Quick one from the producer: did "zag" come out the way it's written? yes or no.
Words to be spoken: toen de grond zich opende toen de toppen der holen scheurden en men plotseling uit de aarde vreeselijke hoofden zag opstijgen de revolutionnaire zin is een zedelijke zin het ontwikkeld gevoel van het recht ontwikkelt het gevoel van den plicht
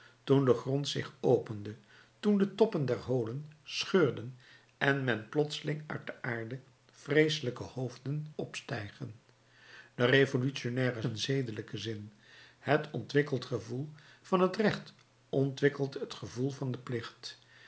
no